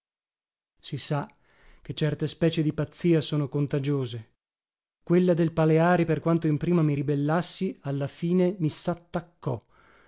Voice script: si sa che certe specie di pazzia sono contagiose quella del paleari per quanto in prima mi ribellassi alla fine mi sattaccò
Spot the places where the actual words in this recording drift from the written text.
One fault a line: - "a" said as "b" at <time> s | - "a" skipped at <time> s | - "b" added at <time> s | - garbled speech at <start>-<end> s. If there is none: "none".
none